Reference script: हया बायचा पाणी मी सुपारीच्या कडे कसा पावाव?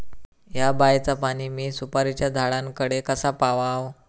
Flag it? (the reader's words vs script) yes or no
yes